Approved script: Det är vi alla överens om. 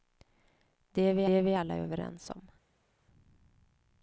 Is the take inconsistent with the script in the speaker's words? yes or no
yes